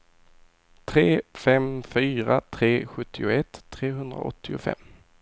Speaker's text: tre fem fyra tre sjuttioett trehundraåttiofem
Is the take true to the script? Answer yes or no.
yes